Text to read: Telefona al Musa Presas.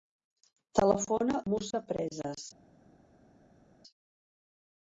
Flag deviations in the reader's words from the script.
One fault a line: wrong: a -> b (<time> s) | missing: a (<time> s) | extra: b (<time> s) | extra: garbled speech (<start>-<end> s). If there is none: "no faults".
missing: al (1.4 s)